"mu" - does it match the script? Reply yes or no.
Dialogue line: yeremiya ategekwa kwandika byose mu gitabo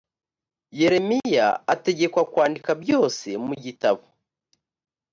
yes